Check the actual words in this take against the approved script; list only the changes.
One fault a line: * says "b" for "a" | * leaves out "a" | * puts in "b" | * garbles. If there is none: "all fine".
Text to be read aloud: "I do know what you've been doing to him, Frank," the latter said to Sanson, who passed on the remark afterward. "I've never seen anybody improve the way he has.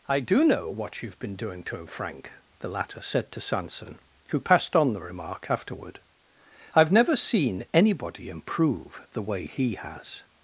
all fine